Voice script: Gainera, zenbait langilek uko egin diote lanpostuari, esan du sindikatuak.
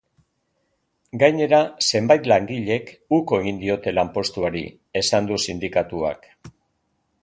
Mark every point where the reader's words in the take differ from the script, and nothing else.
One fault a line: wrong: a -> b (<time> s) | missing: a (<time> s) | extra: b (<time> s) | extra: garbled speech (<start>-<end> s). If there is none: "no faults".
no faults